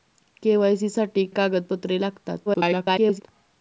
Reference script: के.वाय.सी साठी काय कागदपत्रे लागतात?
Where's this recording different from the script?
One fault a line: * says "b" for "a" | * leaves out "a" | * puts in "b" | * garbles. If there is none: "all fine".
* leaves out "काय"
* garbles